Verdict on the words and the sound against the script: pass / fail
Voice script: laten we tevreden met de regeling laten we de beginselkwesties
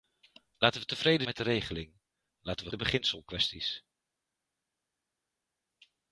pass